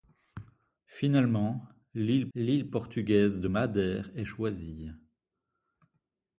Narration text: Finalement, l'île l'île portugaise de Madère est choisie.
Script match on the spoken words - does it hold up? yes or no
yes